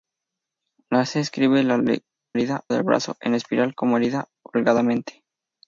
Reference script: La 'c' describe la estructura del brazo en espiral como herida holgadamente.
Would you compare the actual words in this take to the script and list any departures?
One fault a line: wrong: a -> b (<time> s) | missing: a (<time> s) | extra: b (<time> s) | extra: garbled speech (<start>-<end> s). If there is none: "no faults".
wrong: estructura -> herida (2.3 s)